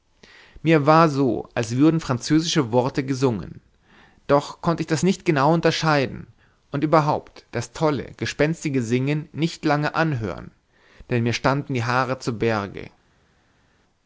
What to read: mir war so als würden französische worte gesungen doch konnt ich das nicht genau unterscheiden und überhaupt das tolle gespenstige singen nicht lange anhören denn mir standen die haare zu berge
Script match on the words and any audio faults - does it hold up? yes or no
yes